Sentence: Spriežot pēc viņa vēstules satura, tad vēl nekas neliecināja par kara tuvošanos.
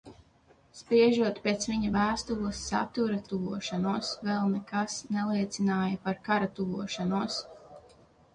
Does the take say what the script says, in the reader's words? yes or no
no